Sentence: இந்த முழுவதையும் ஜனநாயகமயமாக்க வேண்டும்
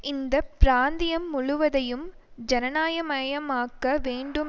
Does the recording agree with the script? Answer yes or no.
no